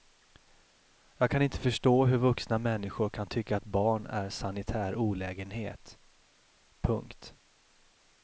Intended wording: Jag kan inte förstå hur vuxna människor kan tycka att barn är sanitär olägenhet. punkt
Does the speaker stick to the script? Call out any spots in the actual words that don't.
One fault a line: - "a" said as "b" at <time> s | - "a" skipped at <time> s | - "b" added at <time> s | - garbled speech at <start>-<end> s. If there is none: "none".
none